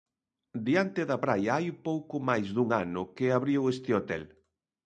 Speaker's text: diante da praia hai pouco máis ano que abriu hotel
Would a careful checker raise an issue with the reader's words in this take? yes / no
yes